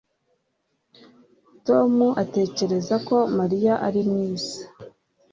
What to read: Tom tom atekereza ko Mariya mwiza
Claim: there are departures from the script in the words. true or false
true